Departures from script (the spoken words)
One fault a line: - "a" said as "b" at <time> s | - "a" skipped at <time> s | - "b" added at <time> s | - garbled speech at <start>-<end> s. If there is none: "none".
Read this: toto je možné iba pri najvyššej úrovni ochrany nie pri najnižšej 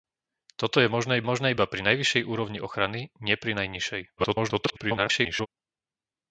- "možné" added at 1.2 s
- garbled speech at 4.2-5.5 s